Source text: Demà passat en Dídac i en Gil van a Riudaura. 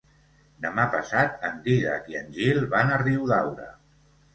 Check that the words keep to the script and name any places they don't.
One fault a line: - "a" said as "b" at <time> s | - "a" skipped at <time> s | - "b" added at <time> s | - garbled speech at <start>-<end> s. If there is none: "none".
none